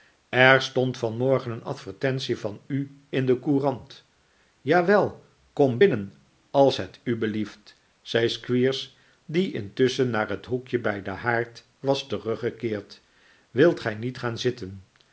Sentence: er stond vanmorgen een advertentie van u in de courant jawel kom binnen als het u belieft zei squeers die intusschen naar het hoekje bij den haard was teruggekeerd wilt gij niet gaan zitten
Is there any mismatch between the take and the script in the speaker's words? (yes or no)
no